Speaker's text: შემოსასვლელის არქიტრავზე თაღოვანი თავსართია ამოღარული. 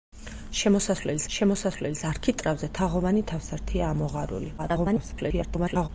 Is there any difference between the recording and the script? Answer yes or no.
yes